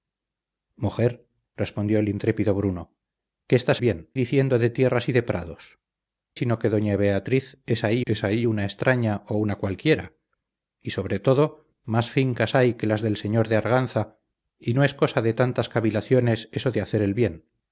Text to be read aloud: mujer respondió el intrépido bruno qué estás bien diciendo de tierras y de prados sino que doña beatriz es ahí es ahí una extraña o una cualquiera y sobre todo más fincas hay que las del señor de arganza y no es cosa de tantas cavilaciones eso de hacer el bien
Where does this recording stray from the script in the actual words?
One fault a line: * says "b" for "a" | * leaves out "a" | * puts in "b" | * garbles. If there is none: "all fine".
all fine